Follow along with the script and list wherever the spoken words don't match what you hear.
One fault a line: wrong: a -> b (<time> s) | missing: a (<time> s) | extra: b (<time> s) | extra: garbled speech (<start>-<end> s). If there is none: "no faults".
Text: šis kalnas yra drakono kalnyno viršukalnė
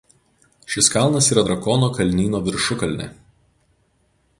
no faults